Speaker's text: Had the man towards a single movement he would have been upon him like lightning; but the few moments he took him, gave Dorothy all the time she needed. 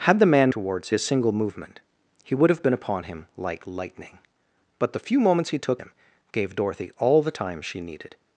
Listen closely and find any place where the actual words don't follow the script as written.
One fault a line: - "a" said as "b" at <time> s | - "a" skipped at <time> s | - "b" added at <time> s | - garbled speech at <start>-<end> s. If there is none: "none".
none